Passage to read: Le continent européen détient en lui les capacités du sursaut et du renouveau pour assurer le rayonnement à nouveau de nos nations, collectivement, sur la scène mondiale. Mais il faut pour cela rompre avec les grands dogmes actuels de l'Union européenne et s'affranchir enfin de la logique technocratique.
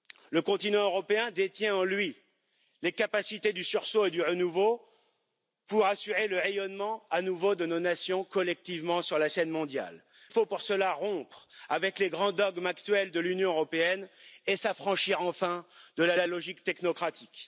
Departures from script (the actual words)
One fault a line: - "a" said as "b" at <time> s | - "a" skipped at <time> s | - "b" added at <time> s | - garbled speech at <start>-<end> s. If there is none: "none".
- "Mais il" skipped at 10.0 s
- "la" added at 16.1 s